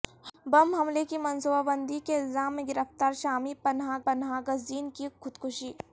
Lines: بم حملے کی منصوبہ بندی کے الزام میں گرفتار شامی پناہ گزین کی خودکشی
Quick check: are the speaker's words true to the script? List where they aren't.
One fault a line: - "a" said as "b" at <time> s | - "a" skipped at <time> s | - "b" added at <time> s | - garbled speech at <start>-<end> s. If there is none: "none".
- "پناہ" added at 4.0 s